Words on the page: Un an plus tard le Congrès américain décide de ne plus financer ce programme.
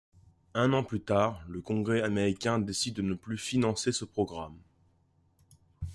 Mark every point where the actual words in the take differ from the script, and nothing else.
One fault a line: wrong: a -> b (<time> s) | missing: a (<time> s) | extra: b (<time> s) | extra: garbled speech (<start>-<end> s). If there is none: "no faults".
no faults